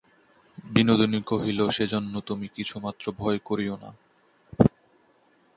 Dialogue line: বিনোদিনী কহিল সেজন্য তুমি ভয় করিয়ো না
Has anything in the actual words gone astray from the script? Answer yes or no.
yes